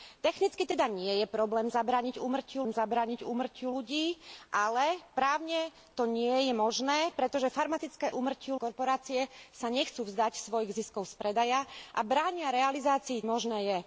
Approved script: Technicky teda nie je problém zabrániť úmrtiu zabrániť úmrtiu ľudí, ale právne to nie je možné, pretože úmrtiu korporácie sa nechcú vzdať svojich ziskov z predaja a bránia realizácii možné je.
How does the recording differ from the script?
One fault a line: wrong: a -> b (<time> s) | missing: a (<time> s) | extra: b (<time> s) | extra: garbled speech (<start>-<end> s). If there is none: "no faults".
no faults